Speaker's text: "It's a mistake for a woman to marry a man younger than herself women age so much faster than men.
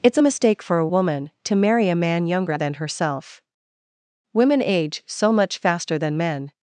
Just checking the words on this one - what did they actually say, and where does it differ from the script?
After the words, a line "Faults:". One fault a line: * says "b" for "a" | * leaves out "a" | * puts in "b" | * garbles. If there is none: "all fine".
"It's a mistake for a woman to marry a man younger than herself women age so much faster than men.
Faults:
all fine